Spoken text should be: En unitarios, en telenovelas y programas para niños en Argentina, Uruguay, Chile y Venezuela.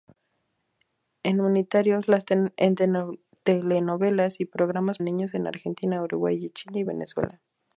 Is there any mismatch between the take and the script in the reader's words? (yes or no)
yes